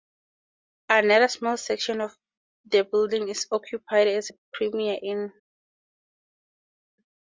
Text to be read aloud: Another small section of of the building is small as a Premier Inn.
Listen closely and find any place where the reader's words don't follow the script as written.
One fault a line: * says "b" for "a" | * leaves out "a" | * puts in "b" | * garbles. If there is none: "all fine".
* leaves out "of"
* says "occupied" for "small"